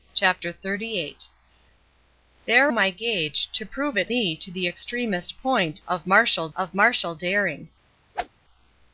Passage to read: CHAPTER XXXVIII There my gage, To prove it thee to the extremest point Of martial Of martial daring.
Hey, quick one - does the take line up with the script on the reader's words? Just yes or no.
yes